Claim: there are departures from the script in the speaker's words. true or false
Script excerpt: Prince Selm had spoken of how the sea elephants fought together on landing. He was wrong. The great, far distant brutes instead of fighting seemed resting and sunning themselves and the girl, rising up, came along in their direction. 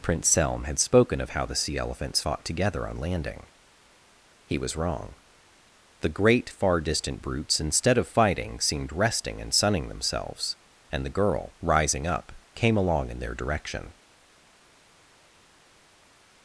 false